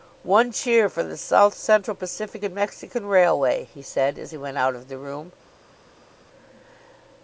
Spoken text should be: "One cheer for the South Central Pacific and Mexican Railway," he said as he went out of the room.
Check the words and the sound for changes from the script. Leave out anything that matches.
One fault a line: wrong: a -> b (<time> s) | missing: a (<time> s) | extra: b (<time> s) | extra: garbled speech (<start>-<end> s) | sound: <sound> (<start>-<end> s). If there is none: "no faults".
no faults